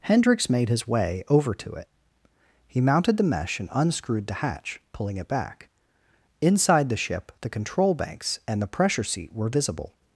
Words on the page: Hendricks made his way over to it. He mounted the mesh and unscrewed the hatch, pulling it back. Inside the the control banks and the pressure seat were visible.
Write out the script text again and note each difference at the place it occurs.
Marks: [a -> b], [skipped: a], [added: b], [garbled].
Hendricks made his way over to it. He mounted the mesh and unscrewed the hatch, pulling it back. Inside the [added: ship] the control banks and the pressure seat were visible.